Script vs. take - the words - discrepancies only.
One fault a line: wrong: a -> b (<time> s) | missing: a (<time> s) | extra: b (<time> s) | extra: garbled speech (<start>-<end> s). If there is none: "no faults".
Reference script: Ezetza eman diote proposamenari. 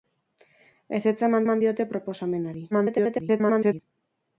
extra: eman (1.4 s)
extra: garbled speech (2.7-3.8 s)